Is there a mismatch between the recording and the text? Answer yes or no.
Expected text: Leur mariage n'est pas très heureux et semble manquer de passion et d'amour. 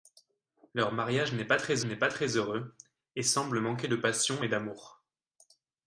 yes